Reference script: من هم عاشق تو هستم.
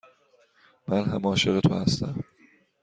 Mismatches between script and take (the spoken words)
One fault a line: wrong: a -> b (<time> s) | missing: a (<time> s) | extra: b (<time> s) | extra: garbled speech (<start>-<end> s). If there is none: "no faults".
no faults